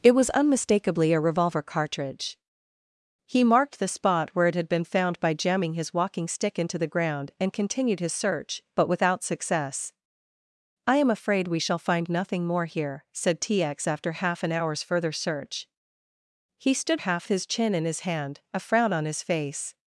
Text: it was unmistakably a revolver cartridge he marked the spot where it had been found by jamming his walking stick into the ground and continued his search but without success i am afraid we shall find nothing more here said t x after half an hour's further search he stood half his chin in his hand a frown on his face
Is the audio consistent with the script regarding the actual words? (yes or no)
yes